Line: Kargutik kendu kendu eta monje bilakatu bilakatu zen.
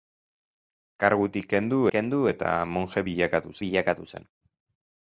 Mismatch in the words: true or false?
false